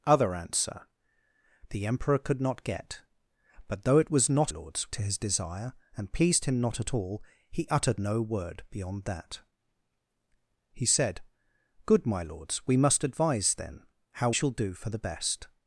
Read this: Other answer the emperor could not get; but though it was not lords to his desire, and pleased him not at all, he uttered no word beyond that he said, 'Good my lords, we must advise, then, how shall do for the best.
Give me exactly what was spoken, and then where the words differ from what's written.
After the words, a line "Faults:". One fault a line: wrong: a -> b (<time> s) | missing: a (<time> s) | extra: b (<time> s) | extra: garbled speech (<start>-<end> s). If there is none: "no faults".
Other answer the emperor could not get; but though it was not lords to his desire, and pleased him not at all, he uttered no word beyond that he said, 'Good my lords, we must advise, then, how shall do for the best.
Faults:
no faults